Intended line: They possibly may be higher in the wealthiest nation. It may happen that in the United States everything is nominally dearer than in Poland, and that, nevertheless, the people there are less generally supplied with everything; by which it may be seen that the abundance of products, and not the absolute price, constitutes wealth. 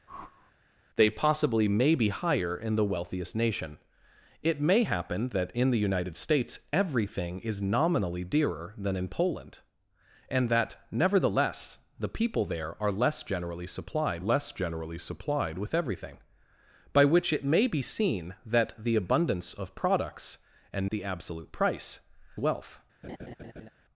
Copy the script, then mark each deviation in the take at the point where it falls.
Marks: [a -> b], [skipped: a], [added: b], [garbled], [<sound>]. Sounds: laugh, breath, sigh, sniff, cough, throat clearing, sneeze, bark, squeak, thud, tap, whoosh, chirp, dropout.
[whoosh] They possibly may be higher in the wealthiest nation. It may happen that in the United States everything is nominally dearer than in Poland, and that, nevertheless, the people there are less generally supplied [added: less generally supplied] with everything; by which it may be seen that the abundance of products, and [skipped: not] the absolute price, [skipped: constitutes] wealth. [laugh]